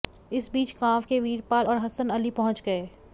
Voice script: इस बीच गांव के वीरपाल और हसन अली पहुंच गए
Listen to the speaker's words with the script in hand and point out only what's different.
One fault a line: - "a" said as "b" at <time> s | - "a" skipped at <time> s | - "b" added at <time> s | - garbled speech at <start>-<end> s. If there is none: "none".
none